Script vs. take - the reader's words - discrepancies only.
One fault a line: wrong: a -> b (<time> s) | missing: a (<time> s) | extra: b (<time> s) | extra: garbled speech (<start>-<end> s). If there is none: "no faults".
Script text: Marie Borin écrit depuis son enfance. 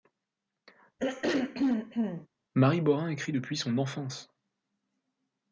no faults